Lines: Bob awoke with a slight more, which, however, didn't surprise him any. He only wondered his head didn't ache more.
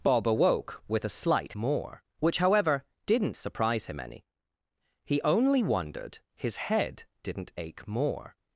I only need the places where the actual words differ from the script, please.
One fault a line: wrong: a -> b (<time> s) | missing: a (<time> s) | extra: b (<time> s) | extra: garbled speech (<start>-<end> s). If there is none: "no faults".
no faults